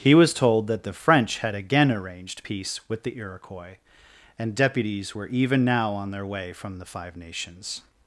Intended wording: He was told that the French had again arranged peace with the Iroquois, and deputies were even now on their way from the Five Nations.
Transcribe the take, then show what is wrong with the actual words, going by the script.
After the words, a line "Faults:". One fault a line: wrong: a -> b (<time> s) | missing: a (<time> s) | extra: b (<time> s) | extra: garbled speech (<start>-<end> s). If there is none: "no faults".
He was told that the French had again arranged peace with the Iroquois, and deputies were even now on their way from the Five Nations.
Faults:
no faults